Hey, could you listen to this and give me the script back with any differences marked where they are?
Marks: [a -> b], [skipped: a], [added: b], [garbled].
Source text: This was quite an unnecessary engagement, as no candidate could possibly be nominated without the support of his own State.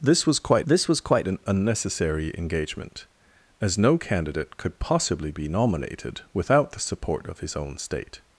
This was quite [added: this was quite] an unnecessary engagement, as no candidate could possibly be nominated without the support of his own State.